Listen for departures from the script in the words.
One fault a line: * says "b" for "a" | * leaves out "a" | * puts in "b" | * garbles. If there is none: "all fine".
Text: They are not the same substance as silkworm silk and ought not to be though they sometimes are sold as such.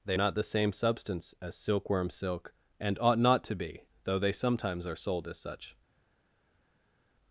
* leaves out "are"